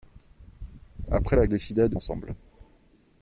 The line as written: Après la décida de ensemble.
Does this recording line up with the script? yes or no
yes